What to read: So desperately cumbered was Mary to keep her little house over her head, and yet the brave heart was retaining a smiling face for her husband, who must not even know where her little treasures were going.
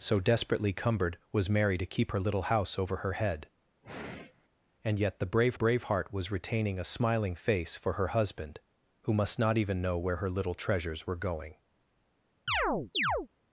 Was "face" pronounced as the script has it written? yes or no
yes